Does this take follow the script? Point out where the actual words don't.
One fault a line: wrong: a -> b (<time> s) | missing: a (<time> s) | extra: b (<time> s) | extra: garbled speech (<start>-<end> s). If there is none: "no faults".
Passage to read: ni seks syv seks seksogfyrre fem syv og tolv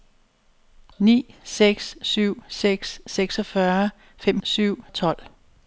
no faults